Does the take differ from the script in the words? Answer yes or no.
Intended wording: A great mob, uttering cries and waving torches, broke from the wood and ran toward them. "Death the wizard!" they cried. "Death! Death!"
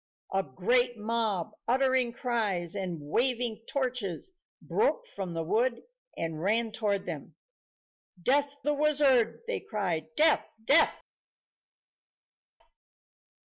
no